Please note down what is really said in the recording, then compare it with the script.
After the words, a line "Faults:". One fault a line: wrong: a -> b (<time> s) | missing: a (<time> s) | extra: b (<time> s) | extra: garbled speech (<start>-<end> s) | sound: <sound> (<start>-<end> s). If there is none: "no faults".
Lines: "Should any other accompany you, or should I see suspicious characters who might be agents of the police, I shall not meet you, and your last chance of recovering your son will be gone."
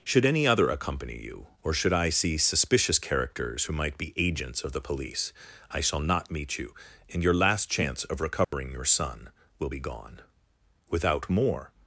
"Should any other accompany you, or should I see suspicious characters who might be agents of the police, I shall not meet you, and your last chance of recovering your son will be gone." Without more
Faults:
sound: dropout (8.4-8.5 s)
extra: Without more (10.9 s)